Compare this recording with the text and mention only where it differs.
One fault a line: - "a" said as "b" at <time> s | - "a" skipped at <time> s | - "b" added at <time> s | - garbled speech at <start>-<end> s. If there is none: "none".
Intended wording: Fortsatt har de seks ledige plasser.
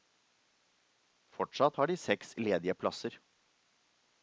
none